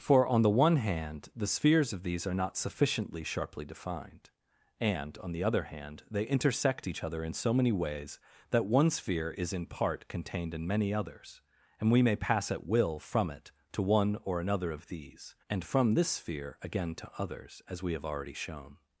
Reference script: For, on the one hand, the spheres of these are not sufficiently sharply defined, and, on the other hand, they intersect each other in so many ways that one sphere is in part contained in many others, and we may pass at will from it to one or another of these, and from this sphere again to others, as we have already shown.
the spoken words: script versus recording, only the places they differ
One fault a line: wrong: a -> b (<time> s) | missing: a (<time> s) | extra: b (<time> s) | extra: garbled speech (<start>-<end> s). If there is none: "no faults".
no faults